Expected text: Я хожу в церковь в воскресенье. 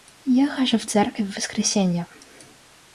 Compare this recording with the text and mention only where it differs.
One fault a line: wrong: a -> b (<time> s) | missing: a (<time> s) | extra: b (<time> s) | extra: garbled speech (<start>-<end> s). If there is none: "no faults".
no faults